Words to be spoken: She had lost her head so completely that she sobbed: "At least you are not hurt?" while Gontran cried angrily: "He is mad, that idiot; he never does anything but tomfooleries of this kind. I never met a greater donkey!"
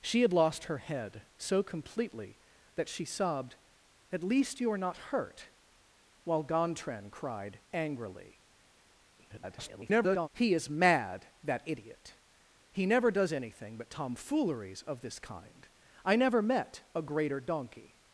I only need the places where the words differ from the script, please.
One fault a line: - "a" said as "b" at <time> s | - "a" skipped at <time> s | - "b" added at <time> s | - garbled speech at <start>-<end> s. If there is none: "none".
- garbled speech at 9.2-10.3 s